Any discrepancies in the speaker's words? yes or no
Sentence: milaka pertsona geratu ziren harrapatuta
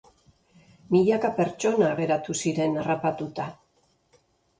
no